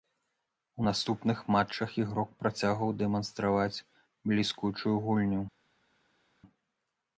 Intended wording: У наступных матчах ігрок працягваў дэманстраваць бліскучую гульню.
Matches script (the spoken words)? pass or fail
pass